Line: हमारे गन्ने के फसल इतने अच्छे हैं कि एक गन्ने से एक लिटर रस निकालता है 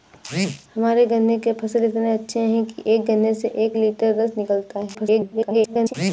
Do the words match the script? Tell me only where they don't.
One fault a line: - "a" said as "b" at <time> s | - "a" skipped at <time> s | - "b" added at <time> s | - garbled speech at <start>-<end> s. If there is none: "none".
- garbled speech at 4.9-5.9 s